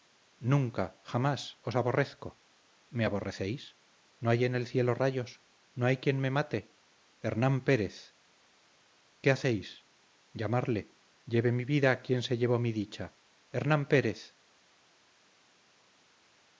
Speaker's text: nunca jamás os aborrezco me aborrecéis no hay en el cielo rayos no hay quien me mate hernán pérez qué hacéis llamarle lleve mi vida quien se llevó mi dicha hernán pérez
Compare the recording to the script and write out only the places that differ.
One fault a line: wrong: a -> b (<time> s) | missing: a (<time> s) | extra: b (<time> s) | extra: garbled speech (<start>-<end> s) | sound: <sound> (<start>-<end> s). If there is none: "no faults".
no faults